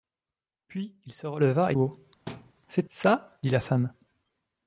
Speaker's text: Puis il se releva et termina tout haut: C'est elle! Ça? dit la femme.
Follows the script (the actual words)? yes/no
no